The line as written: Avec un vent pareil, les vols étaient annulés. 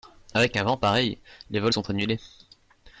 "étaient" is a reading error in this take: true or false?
true